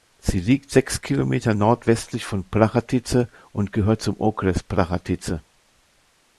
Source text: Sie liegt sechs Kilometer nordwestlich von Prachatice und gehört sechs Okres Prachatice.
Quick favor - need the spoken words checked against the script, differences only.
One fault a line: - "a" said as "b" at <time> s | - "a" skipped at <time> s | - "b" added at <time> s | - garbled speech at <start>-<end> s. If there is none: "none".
- "sechs" said as "zum" at 4.0 s